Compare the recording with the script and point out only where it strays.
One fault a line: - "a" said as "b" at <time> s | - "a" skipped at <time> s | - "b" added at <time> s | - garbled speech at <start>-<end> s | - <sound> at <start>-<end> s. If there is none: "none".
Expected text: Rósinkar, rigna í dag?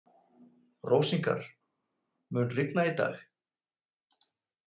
- "mun" added at 2.4 s